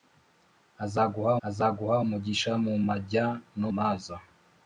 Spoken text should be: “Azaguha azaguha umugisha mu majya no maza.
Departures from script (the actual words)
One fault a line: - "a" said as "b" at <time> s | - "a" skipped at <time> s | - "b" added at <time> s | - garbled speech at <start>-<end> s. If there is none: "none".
none